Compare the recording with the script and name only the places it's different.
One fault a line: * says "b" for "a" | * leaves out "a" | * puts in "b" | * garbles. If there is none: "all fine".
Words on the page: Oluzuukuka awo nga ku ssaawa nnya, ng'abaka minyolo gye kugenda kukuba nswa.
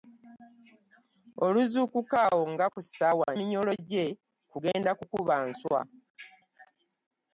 * leaves out "nnya ng'abaka"